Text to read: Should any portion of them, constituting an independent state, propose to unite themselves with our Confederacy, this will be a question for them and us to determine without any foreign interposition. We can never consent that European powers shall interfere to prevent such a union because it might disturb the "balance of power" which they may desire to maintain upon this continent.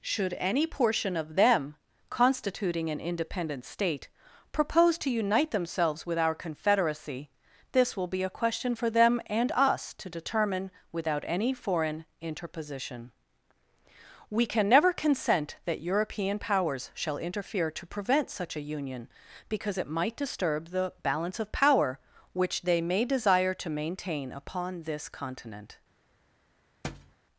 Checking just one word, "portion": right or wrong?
right